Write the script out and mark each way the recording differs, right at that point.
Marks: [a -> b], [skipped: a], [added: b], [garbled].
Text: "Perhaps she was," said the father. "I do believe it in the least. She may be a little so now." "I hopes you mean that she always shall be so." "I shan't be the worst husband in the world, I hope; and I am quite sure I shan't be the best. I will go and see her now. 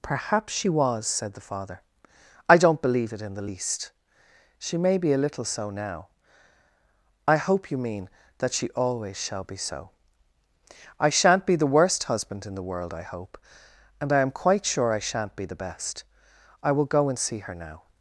"Perhaps she was," said the father. "I [do -> don't] believe it in the least. She may be a little so now." "I [hopes -> hope] you mean that she always shall be so." "I shan't be the worst husband in the world, I hope; and I am quite sure I shan't be the best. I will go and see her now.